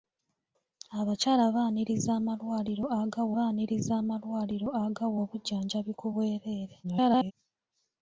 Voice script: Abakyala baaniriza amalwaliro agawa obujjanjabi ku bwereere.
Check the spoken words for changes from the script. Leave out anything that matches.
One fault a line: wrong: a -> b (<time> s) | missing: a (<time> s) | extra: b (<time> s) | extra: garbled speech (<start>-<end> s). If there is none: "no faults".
extra: baaniriza amalwaliro agawa (3.4 s)
extra: garbled speech (6.8-7.3 s)